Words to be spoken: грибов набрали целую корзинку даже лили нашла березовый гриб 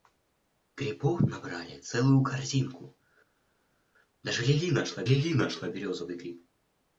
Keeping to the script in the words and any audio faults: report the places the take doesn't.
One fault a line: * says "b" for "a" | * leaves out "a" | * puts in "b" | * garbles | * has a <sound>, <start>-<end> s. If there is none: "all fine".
* puts in "лили нашла"